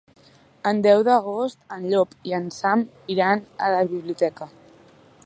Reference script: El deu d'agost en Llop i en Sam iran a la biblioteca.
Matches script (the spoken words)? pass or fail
pass